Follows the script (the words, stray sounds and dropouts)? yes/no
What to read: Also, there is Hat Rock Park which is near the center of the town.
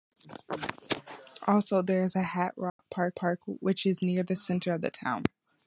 no